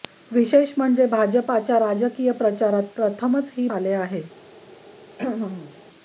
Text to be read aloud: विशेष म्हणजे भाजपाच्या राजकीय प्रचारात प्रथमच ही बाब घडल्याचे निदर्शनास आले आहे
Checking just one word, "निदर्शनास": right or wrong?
wrong